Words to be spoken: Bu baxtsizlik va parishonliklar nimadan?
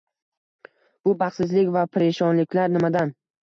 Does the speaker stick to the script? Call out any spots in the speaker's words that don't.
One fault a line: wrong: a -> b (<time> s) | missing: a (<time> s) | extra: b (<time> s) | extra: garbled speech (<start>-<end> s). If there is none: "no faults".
no faults